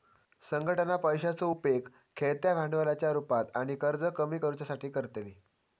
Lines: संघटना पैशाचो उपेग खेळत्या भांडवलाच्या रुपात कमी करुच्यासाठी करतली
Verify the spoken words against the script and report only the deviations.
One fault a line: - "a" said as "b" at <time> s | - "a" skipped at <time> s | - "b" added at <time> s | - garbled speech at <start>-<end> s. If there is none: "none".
- "आणि कर्ज" added at 3.5 s